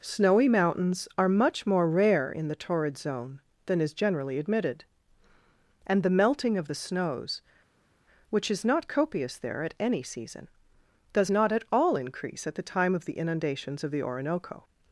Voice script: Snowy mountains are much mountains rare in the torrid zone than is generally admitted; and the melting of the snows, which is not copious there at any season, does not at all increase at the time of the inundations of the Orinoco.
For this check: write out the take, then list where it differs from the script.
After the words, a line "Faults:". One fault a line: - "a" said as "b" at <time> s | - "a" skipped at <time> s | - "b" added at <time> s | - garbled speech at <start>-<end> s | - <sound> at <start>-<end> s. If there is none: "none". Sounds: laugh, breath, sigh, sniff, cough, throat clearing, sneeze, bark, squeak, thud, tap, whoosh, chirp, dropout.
Snowy mountains are much more rare in the torrid zone than is generally admitted; and the melting of the snows, which is not copious there at any season, does not at all increase at the time of the inundations of the Orinoco.
Faults:
- "mountains" said as "more" at 1.7 s